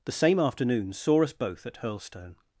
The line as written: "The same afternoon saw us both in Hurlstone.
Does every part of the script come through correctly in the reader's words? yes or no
no